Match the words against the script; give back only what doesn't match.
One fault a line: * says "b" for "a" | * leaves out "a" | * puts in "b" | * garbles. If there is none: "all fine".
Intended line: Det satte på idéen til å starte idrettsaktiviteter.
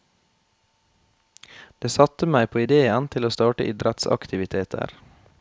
* puts in "meg"